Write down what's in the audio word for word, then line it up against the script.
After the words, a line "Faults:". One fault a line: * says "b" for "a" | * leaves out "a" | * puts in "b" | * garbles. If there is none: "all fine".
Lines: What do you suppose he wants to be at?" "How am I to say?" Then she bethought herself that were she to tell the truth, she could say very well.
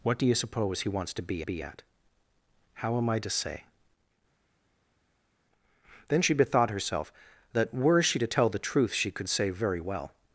What do you suppose he wants to be be at?" "How am I to say?" Then she bethought herself that were she to tell the truth, she could say very well.
Faults:
* puts in "be"